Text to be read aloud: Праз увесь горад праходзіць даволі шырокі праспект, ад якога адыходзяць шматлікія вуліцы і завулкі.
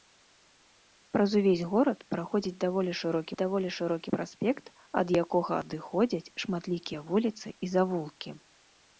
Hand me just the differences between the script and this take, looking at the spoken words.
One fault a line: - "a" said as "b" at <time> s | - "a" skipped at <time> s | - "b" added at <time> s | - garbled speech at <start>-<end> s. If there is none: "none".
- "даволі шырокі" added at 3.4 s